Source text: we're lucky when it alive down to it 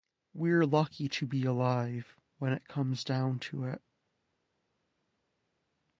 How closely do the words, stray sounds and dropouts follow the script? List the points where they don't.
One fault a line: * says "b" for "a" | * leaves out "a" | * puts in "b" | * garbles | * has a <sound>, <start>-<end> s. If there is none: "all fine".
* puts in "to be alive"
* says "comes" for "alive"